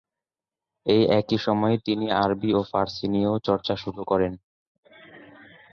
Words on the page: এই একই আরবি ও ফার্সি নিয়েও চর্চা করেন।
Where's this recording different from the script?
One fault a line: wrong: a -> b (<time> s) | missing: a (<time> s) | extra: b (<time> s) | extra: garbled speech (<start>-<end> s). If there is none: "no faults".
extra: সময়ে তিনি (1.4 s)
extra: শুরু (3.8 s)